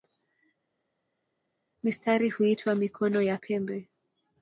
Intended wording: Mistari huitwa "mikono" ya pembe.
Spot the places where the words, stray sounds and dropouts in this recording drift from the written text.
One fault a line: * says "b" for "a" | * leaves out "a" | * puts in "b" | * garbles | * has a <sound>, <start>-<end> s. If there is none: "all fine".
all fine